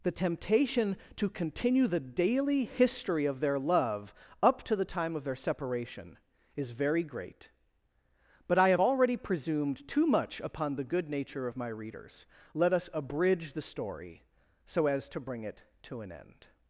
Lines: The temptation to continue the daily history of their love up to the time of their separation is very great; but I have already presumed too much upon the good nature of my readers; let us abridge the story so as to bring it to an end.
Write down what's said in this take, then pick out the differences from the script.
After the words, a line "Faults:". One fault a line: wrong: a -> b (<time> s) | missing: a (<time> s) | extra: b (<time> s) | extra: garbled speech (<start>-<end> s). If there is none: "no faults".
The temptation to continue the daily history of their love up to the time of their separation is very great; but I have already presumed too much upon the good nature of my readers; let us abridge the story so as to bring it to an end.
Faults:
no faults